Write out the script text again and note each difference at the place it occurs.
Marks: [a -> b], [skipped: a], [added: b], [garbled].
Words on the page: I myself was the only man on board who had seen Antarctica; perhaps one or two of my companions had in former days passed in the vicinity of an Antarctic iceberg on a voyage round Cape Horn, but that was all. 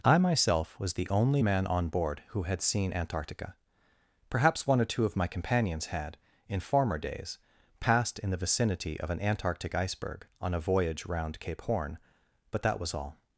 I myself was the only man on board who had seen Antarctica; perhaps one or two of my companions had in former days passed in the vicinity of an Antarctic iceberg on a voyage round Cape Horn, but that was all.